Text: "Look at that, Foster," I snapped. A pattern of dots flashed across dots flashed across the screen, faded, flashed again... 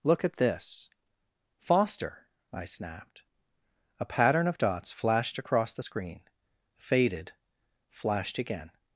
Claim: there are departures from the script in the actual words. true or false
true